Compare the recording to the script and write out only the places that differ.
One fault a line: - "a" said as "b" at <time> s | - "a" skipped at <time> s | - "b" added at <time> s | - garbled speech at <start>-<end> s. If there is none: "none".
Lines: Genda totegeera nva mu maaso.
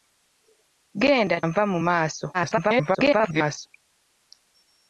- "totegeera" skipped at 1.4 s
- garbled speech at 2.3-3.7 s